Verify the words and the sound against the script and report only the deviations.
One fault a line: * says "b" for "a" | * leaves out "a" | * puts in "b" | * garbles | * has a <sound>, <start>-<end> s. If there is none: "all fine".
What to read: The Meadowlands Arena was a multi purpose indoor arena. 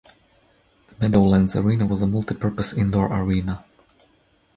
all fine